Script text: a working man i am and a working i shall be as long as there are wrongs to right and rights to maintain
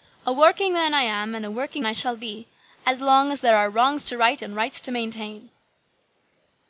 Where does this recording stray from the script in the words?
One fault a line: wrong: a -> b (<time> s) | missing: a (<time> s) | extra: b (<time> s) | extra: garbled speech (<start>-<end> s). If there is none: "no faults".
no faults